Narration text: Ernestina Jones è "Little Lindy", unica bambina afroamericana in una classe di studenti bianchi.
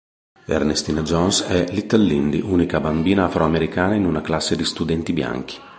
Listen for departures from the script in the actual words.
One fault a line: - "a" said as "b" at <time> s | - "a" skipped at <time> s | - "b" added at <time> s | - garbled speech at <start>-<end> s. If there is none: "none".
none